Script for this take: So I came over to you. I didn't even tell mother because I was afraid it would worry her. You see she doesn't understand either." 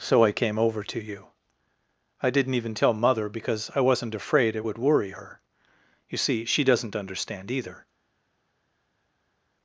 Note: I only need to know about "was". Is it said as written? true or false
false